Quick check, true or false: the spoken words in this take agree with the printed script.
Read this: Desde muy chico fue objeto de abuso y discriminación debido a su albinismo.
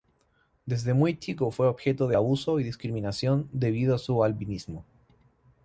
true